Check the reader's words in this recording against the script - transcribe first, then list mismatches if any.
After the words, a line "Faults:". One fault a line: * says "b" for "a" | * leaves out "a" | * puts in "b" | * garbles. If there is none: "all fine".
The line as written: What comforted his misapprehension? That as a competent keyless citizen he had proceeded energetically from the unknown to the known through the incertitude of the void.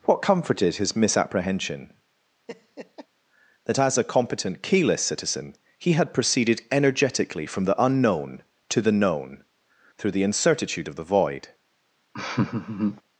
What comforted his misapprehension? That as a competent keyless citizen he had proceeded energetically from the unknown to the known through the incertitude of the void.
Faults:
all fine